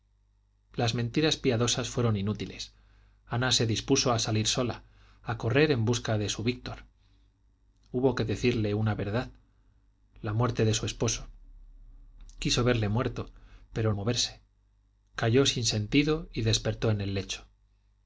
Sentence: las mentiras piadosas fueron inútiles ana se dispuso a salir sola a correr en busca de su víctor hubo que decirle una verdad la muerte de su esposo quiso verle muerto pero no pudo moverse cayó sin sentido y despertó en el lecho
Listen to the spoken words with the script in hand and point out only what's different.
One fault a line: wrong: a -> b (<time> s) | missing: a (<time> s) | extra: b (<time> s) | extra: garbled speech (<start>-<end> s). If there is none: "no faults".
missing: no pudo (13.9 s)